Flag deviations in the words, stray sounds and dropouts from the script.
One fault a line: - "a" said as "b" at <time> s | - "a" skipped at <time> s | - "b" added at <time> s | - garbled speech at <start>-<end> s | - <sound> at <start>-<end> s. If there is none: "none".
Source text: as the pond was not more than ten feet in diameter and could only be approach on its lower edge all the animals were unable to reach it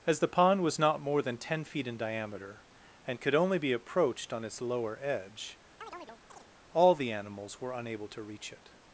- "approach" said as "approached" at 3.7 s
- chirp at 5.8-6.5 s